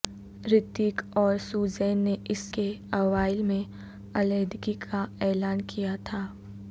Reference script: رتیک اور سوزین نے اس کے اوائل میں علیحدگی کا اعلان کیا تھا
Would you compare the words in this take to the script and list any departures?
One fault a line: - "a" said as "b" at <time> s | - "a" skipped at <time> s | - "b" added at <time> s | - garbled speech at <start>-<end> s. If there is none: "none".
none